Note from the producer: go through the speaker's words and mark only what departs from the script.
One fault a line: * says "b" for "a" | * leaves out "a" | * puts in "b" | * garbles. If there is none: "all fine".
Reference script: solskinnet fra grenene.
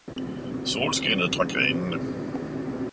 all fine